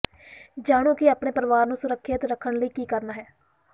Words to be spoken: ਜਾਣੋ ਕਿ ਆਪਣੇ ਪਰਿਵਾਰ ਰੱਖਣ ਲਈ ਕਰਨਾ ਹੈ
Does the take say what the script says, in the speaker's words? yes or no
no